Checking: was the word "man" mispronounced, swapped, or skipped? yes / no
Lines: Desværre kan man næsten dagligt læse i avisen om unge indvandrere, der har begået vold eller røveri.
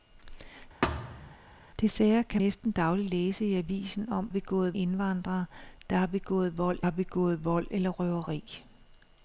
yes